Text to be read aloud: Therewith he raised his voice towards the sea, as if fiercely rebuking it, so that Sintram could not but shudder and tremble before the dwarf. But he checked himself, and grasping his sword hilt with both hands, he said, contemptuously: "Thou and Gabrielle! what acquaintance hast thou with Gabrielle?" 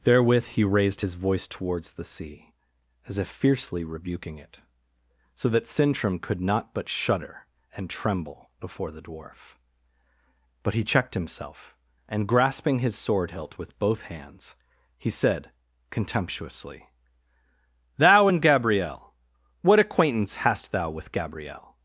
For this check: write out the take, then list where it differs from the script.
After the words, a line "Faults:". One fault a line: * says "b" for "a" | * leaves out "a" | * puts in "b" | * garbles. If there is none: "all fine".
Therewith he raised his voice towards the sea, as if fiercely rebuking it, so that Sintram could not but shudder and tremble before the dwarf. But he checked himself, and grasping his sword hilt with both hands, he said, contemptuously: "Thou and Gabrielle! what acquaintance hast thou with Gabrielle?"
Faults:
all fine